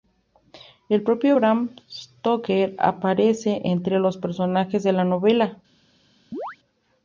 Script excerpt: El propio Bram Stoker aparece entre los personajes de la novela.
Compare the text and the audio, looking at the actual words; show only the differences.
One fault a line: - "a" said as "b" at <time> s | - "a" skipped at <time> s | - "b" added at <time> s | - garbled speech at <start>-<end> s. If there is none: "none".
none